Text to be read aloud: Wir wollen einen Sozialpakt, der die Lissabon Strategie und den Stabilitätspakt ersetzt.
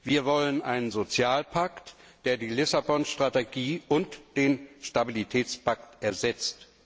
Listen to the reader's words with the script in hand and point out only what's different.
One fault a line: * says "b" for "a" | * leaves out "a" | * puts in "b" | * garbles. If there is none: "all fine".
all fine